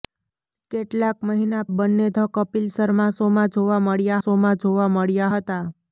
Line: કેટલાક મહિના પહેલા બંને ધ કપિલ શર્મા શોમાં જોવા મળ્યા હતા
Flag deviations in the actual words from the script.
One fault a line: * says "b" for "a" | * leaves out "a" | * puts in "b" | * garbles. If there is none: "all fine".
* leaves out "પહેલા"
* puts in "શોમાં જોવા મળ્યા"